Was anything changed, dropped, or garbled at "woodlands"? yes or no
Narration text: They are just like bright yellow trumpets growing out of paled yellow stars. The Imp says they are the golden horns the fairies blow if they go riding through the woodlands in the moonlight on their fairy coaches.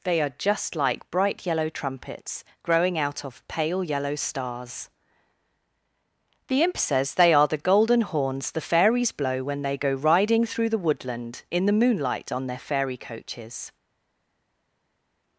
yes